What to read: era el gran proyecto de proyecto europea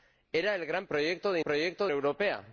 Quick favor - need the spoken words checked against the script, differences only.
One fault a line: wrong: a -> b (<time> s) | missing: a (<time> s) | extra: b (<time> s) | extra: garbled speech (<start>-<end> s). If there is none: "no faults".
no faults